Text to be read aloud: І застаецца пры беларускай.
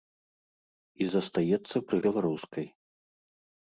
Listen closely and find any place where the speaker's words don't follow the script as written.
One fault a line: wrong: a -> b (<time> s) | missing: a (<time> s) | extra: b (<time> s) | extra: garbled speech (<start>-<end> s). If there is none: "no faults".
no faults